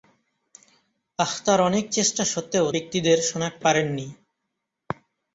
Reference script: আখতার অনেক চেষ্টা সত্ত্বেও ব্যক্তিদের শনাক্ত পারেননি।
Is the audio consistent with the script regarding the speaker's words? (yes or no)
yes